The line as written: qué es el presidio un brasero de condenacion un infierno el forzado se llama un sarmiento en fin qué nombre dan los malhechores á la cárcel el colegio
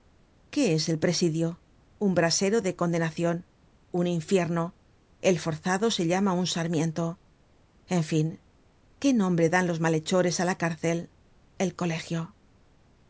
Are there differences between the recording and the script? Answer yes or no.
no